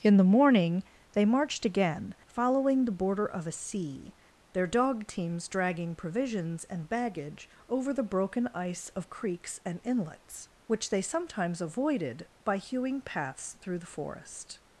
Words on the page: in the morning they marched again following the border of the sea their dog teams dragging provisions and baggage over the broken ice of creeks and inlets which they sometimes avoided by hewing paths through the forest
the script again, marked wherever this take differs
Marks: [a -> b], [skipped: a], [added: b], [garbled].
in the morning they marched again following the border of [the -> a] sea their dog teams dragging provisions and baggage over the broken ice of creeks and inlets which they sometimes avoided by hewing paths through the forest